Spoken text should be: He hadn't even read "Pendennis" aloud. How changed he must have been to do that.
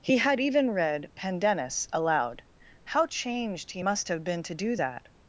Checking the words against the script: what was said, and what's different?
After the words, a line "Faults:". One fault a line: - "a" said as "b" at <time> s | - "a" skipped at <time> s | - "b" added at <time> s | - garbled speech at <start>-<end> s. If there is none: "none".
He had even read "Pendennis" aloud. How changed he must have been to do that.
Faults:
- "hadn't" said as "had" at 0.2 s